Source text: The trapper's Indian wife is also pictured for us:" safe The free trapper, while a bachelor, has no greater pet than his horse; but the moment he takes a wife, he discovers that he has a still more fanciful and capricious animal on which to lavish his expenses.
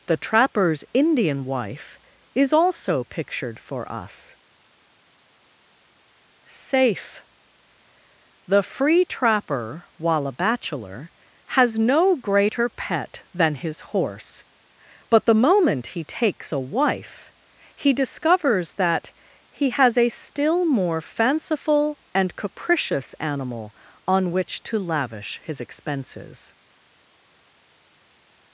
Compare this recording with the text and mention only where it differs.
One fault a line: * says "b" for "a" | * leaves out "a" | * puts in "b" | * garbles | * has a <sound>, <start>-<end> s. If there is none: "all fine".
all fine